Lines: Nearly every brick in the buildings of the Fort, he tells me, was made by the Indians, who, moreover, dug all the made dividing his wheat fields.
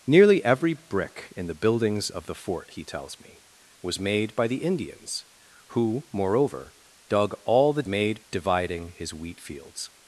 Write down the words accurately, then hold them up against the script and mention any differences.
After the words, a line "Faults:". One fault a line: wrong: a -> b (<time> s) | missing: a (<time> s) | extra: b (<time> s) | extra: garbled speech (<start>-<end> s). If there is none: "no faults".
Nearly every brick in the buildings of the Fort, he tells me, was made by the Indians, who, moreover, dug all the made dividing his wheat fields.
Faults:
no faults